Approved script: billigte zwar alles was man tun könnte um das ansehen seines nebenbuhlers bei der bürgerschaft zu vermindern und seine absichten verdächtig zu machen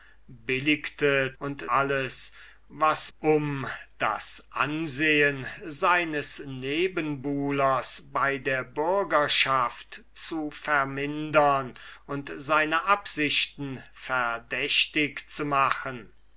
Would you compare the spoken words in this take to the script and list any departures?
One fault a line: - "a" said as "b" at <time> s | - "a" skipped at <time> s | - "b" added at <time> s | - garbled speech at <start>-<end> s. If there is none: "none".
- "zwar" said as "und" at 1.4 s
- "man tun könnte" skipped at 3.1 s